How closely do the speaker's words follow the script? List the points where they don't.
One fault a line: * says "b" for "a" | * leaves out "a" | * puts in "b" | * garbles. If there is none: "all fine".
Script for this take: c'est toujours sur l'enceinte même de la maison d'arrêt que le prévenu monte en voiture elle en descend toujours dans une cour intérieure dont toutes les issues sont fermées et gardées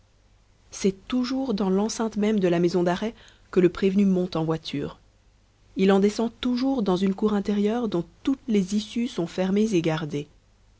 * says "dans" for "sur"
* says "il" for "elle"